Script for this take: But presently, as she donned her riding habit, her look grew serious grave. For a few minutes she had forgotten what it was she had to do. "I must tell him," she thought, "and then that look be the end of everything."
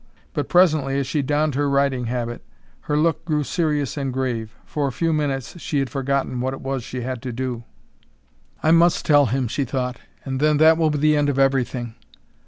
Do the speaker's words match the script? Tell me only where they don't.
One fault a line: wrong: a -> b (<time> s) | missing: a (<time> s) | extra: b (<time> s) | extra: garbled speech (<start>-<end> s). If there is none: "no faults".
extra: and (4.0 s)
wrong: look -> will (10.8 s)